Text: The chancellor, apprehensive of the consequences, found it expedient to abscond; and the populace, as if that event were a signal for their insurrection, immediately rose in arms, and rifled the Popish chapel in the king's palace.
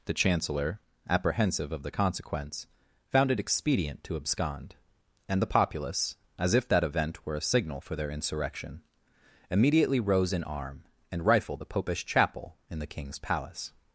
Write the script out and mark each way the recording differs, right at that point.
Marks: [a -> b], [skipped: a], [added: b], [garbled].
The chancellor, apprehensive of the [consequences, -> consequence] found it expedient to abscond; and the populace, as if that event were a signal for their insurrection, immediately rose in [arms, -> arm] and rifled the Popish chapel in the king's palace.